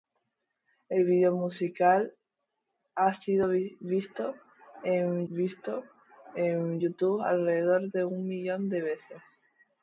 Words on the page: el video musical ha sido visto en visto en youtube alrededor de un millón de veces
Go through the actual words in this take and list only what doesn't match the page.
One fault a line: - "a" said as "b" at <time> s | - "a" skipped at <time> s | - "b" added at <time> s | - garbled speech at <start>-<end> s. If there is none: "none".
none